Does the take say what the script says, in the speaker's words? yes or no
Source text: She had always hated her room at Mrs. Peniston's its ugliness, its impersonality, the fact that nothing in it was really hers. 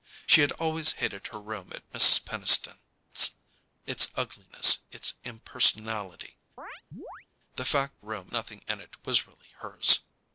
no